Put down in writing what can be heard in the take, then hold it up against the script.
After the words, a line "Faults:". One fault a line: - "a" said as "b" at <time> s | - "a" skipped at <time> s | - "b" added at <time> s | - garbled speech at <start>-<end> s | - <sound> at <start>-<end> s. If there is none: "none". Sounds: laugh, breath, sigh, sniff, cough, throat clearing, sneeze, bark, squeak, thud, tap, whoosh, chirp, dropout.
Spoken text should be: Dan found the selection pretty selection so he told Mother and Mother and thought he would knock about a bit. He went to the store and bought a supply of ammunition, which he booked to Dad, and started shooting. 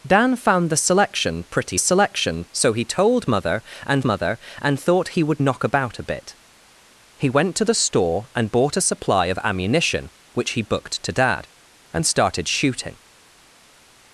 Dan found the selection pretty selection so he told Mother and Mother and thought he would knock about a bit. He went to the store and bought a supply of ammunition, which he booked to Dad, and started shooting.
Faults:
none